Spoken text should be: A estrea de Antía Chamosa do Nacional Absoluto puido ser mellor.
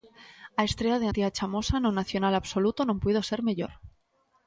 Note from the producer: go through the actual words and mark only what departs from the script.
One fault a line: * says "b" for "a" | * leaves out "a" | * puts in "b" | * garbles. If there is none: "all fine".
* says "no" for "do"
* puts in "non"